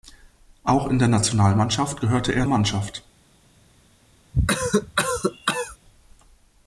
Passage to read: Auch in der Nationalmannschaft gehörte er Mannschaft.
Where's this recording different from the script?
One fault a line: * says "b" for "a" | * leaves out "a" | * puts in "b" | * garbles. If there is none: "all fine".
all fine